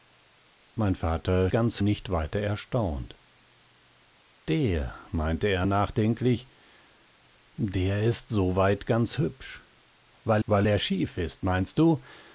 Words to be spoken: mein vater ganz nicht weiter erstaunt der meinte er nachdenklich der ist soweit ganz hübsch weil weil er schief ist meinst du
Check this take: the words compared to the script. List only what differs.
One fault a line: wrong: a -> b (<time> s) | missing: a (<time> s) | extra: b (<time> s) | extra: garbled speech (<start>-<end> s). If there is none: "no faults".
no faults